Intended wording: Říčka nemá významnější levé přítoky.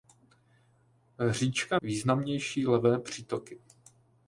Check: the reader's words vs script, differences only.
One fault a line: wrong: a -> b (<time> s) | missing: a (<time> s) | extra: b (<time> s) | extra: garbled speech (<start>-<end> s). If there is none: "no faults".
missing: nemá (1.8 s)